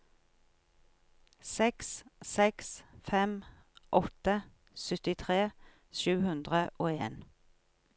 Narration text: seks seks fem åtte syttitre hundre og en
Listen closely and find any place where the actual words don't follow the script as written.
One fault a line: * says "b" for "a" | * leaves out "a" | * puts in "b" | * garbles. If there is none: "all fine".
* puts in "sju"